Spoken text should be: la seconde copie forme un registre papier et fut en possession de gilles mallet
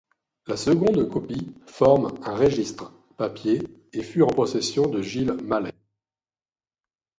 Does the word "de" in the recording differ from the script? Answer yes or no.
no